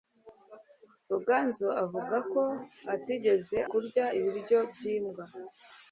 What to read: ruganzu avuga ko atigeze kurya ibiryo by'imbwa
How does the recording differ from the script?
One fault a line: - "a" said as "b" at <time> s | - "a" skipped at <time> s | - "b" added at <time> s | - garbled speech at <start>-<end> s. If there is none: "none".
none